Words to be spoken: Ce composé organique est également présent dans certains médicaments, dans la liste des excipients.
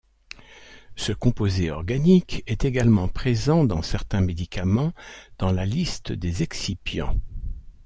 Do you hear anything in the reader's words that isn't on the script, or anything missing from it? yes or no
no